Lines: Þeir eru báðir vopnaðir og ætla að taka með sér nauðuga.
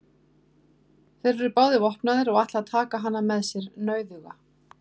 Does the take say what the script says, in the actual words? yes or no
no